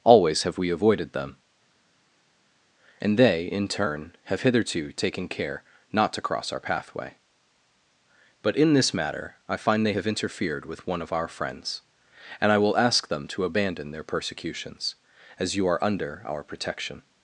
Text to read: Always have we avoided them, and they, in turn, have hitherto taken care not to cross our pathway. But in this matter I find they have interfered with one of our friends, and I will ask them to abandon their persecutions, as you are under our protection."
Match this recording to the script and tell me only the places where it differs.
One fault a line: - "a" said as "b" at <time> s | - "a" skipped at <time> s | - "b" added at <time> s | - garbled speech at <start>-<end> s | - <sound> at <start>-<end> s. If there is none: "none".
none